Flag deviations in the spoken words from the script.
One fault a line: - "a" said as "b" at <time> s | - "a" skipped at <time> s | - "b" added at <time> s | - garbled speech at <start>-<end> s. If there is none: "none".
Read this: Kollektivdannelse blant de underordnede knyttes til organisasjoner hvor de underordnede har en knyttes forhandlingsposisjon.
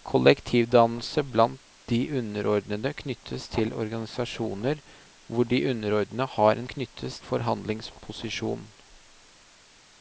none